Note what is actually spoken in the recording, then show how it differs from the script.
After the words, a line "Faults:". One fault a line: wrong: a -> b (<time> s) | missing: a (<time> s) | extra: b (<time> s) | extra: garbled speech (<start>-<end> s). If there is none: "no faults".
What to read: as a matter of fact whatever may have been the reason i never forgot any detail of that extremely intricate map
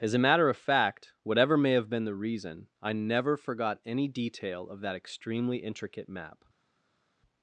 as a matter of fact whatever may have been the reason i never forgot any detail of that extremely intricate map
Faults:
no faults